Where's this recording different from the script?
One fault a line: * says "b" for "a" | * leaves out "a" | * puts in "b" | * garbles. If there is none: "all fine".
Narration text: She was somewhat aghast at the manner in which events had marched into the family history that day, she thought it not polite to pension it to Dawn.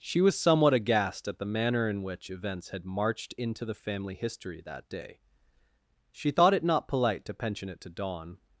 all fine